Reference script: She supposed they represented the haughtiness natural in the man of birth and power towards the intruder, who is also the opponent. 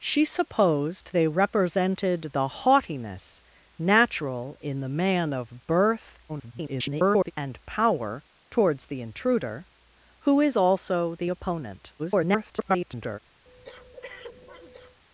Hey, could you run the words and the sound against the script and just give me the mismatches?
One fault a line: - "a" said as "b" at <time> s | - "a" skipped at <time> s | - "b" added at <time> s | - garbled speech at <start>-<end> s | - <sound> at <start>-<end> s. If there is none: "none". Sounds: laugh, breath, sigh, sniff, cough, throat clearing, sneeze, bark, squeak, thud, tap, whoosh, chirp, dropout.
- garbled speech at 6.3-7.3 s
- garbled speech at 12.0-13.2 s
- breath at 13.4-15.0 s